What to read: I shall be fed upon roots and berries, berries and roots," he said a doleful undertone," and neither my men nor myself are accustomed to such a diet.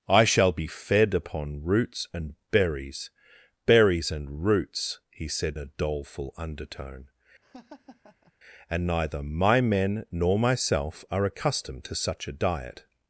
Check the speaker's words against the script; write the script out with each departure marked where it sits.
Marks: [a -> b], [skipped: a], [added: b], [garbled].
I shall be fed upon roots and berries, berries and roots," he said a doleful undertone," and neither my men nor myself are accustomed to such a diet.